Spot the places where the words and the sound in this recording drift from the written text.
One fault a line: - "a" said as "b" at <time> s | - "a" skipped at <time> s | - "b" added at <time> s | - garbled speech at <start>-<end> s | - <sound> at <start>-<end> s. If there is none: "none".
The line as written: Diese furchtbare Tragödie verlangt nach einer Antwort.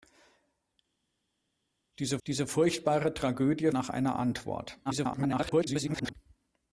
- "diese" added at 2.3 s
- "verlangt" skipped at 3.7 s
- garbled speech at 4.8-6.1 s